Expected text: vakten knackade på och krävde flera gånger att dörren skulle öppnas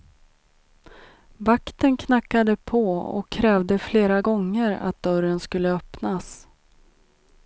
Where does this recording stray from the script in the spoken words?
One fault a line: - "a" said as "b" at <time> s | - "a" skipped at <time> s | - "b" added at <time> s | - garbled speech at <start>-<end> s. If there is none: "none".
none